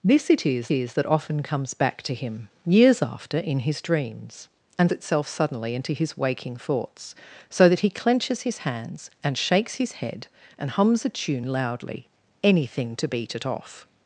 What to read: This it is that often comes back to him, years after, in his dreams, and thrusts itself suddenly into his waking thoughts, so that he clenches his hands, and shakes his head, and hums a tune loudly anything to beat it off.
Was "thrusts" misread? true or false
true